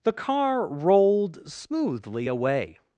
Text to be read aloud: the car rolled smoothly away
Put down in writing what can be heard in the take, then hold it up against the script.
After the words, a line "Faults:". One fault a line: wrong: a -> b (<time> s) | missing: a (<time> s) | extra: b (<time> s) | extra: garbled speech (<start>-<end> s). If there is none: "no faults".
the car rolled smoothly away
Faults:
no faults